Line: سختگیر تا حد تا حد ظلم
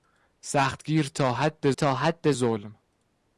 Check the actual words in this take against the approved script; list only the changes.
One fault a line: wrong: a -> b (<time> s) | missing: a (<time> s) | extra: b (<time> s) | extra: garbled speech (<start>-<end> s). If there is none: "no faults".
no faults